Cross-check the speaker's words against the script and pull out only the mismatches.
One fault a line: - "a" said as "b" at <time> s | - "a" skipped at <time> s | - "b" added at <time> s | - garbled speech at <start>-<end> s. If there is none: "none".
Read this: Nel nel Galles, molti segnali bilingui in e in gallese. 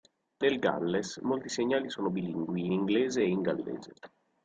- "nel" skipped at 0.6 s
- "sono" added at 1.9 s
- "inglese" added at 2.7 s